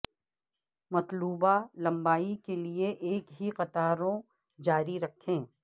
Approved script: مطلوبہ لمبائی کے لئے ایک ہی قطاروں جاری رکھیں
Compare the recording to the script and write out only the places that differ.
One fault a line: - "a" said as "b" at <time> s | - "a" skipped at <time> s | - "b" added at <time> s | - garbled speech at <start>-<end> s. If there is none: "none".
none